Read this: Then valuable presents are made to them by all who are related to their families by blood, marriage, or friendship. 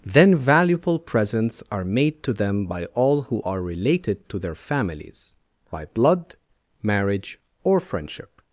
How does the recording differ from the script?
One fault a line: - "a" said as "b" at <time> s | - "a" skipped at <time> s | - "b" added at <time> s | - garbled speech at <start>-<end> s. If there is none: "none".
none